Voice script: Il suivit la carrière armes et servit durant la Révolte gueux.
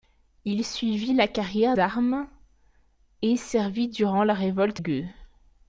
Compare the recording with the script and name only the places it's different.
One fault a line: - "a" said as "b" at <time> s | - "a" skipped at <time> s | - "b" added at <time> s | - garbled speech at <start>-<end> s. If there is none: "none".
none